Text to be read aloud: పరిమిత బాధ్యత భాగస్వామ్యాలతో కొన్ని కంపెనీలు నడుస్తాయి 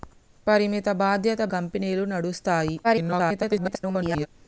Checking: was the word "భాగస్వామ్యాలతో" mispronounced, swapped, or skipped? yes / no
yes